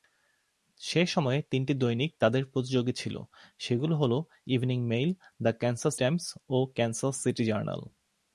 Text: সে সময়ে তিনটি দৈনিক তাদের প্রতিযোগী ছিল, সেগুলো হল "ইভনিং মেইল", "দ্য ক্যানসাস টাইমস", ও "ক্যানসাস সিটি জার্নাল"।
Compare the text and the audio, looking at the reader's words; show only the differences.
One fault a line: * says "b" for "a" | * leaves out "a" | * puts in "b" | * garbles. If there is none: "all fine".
all fine